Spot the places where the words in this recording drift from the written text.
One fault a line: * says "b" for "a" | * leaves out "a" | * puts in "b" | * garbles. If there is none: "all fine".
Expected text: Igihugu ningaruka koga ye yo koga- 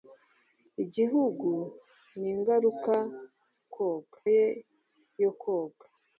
all fine